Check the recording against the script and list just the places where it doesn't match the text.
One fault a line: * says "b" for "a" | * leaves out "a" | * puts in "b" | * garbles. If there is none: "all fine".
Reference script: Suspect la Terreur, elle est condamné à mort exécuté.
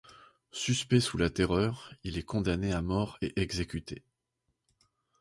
* puts in "sous"
* says "il" for "elle"
* puts in "et"